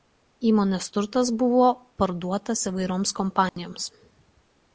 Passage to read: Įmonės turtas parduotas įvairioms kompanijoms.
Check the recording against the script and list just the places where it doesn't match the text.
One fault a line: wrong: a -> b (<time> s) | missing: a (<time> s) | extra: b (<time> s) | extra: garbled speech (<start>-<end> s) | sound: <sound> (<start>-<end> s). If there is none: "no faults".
extra: buvo (1.4 s)
sound: dropout (3.5-3.6 s)